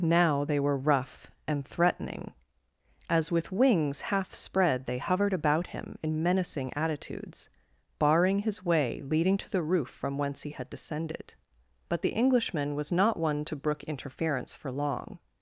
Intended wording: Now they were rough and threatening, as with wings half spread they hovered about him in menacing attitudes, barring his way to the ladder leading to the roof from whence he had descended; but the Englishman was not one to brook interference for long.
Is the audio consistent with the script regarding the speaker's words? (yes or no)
no